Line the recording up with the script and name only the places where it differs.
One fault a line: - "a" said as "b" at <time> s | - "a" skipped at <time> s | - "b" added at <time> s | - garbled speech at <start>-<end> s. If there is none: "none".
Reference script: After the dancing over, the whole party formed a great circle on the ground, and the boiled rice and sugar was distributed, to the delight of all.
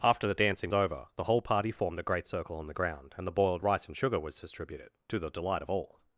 none